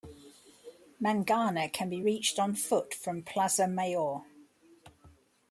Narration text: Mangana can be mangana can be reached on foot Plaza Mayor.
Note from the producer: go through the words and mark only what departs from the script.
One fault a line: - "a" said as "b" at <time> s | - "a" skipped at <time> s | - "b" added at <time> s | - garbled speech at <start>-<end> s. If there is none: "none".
- "mangana can be" skipped at 2.0 s
- "from" added at 2.9 s